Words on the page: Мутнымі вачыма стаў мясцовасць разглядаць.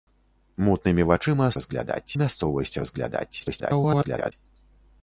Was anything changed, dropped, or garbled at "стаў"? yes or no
yes